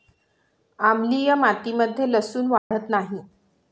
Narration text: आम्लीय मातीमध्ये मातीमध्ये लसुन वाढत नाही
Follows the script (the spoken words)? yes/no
no